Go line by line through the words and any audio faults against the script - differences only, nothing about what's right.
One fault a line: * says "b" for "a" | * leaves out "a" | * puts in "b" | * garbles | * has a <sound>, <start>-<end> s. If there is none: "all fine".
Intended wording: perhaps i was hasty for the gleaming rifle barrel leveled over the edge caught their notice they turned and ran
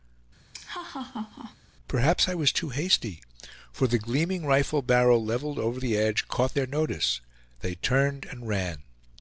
* has a laugh, 0.5-1.6 s
* puts in "too"